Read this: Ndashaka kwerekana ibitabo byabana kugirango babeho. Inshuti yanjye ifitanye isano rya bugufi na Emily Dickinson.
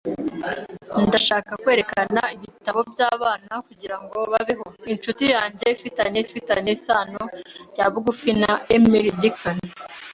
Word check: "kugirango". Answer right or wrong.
right